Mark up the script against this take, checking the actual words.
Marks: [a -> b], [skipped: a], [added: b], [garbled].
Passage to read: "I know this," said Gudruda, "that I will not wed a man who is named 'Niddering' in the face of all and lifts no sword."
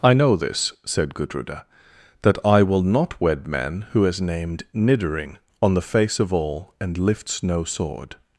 "I know this," said Gudruda, "that I will not wed [skipped: a] man who is named 'Niddering' [in -> on] the face of all and lifts no sword."